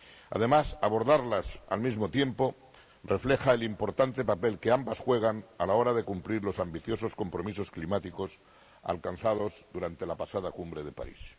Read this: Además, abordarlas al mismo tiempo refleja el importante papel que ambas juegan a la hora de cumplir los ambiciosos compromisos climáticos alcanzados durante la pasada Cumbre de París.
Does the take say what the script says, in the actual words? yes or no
yes